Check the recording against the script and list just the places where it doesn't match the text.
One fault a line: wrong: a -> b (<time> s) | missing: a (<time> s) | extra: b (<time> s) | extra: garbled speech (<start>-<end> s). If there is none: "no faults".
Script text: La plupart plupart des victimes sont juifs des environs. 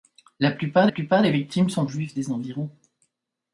no faults